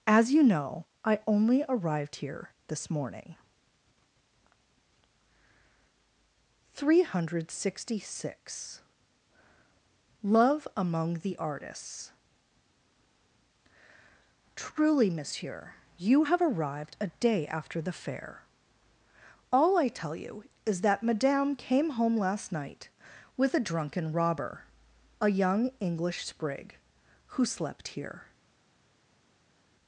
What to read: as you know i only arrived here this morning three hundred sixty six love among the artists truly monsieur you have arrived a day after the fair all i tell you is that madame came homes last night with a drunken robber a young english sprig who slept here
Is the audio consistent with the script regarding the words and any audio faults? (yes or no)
no